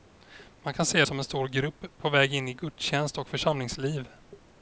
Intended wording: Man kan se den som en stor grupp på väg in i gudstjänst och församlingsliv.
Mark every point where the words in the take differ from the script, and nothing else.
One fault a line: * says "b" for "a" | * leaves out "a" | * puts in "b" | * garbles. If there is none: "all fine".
* leaves out "den"